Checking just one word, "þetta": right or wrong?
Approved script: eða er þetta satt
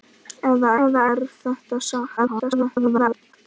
right